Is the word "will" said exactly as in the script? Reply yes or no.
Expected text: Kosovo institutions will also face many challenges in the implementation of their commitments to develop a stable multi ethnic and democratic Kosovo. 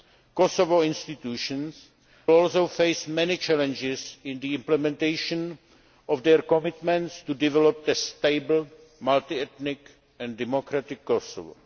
no